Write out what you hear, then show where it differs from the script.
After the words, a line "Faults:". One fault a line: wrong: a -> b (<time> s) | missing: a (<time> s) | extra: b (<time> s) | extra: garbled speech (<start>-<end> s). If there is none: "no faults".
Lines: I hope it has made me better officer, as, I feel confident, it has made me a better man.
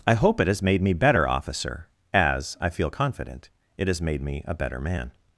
I hope it has made me better officer, as, I feel confident, it has made me a better man.
Faults:
no faults